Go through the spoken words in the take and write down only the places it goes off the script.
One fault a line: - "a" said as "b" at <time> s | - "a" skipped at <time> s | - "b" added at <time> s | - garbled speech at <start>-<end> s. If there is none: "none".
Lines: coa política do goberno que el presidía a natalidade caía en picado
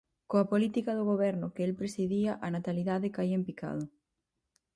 none